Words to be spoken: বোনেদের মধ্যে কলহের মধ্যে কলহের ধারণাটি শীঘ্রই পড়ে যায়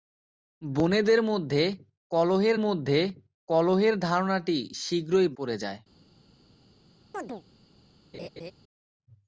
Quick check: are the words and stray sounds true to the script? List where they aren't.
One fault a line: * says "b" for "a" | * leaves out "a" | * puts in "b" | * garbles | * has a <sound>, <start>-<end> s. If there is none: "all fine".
* has a chirp, 7.1-7.4 s
* has a laugh, 8.1-8.5 s